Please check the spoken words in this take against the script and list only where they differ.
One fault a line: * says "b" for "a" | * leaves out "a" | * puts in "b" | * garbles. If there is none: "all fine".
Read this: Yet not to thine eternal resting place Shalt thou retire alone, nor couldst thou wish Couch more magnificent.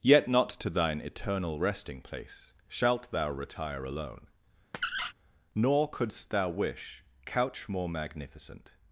all fine